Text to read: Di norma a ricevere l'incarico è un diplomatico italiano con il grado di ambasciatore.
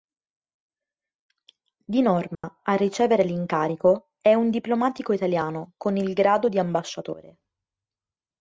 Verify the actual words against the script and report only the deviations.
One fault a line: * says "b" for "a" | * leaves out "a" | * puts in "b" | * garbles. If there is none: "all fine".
all fine